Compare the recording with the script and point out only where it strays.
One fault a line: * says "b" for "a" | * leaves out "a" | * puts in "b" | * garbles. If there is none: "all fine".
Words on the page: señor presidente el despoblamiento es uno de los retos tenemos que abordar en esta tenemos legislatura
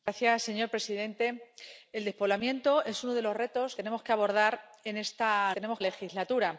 all fine